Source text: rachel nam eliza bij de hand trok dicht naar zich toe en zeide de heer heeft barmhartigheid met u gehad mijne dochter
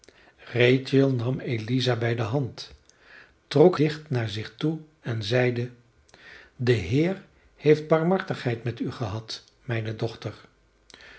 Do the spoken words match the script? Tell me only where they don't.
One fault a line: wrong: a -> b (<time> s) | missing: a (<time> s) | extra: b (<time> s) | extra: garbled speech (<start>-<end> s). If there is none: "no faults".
no faults